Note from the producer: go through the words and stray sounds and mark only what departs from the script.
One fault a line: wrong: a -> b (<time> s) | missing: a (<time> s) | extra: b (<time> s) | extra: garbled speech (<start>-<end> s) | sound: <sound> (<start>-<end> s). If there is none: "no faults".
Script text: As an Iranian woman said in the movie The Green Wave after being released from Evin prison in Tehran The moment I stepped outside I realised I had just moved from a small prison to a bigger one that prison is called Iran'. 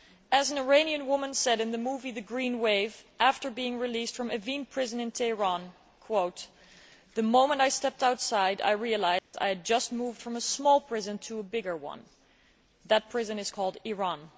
sound: dropout (9.2-9.3 s)